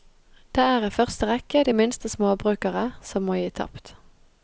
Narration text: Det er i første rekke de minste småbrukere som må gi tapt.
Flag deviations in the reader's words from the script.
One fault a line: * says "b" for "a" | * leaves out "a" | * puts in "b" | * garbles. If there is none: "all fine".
all fine